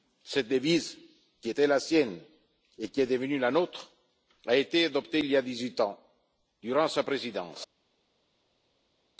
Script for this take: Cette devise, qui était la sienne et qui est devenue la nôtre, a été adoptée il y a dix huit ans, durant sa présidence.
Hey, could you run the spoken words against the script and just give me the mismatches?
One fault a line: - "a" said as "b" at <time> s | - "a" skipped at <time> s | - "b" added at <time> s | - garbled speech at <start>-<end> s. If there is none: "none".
none